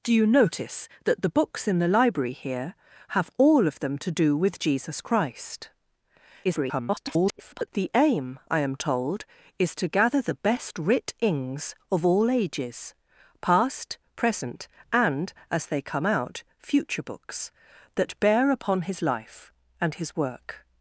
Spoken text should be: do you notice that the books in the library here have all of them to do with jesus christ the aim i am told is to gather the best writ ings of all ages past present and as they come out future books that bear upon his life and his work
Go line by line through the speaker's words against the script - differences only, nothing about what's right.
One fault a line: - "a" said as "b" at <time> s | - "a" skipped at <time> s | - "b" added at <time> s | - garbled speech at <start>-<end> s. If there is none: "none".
- garbled speech at 6.4-7.7 s